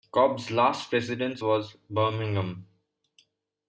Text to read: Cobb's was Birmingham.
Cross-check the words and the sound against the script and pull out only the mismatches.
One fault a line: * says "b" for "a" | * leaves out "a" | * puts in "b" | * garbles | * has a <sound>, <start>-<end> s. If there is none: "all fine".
* puts in "last residence"